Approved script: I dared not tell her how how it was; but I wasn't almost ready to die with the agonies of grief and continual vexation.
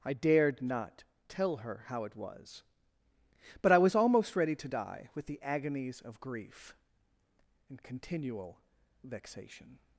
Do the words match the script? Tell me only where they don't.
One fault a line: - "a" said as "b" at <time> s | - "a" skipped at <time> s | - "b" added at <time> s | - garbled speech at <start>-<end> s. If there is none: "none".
- "how" skipped at 2.0 s
- "wasn't" said as "was" at 3.8 s